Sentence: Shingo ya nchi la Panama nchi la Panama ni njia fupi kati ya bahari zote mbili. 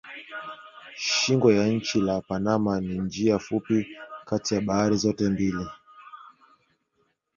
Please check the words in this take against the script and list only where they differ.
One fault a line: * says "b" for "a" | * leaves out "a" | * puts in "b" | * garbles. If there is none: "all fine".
* leaves out "nchi la Panama"